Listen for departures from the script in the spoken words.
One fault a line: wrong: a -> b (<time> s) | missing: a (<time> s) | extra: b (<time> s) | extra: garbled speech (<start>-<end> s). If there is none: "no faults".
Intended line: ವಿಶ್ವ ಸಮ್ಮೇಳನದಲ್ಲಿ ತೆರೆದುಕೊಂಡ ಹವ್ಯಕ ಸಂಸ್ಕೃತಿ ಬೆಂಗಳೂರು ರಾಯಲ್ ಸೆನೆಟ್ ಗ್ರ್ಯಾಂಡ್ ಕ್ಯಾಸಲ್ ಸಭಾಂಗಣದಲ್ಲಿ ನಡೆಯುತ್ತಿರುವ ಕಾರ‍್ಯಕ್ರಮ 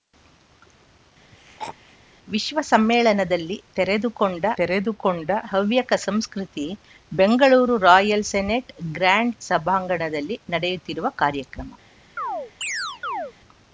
extra: ತೆರೆದುಕೊಂಡ (4.6 s)
missing: ಕ್ಯಾಸಲ್ (9.4 s)